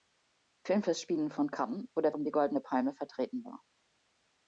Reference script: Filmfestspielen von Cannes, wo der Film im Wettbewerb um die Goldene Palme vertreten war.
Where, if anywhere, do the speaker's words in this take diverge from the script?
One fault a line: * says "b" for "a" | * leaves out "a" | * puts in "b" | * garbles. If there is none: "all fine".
* leaves out "Film im Wettbewerb"